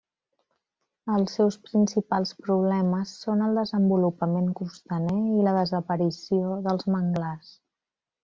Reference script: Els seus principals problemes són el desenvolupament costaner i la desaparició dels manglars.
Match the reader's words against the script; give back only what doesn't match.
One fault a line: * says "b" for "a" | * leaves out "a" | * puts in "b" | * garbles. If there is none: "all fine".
all fine